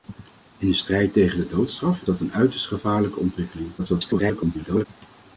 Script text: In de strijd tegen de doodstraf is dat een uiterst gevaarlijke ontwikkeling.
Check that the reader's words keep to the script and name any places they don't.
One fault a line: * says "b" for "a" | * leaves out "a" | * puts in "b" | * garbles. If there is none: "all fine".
* leaves out "is"
* garbles